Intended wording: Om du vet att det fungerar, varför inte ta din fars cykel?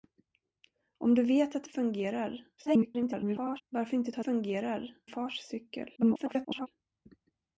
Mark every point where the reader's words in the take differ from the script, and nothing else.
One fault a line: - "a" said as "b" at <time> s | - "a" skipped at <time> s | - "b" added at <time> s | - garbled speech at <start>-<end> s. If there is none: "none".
- garbled speech at 2.6-3.6 s
- "din" said as "fungerar" at 4.2 s
- garbled speech at 6.0-6.7 s